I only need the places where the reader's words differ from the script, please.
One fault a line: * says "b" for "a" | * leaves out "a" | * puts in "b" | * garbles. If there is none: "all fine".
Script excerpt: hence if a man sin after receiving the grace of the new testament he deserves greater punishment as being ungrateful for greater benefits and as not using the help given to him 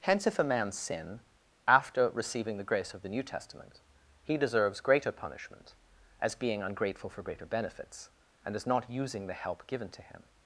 all fine